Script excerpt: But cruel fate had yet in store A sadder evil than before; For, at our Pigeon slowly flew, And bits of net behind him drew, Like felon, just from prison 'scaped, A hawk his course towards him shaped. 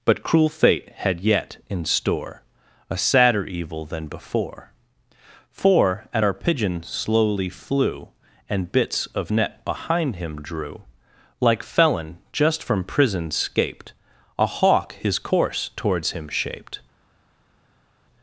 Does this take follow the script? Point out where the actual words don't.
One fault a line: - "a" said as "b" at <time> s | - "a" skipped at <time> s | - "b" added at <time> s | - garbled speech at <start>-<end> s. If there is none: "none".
none